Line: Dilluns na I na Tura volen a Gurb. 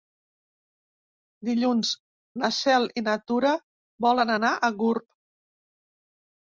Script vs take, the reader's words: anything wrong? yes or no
yes